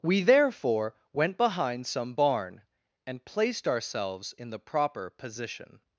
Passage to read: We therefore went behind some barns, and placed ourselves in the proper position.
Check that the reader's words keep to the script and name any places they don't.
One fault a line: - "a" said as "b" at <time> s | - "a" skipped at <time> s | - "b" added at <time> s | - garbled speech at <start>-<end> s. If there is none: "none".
- "barns" said as "barn" at 2.1 s